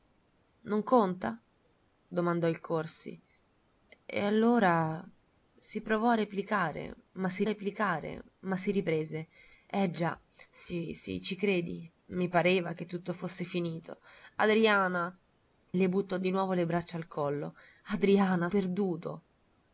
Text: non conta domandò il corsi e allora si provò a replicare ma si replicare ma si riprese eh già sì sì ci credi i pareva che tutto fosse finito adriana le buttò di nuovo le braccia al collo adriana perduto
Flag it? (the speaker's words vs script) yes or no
no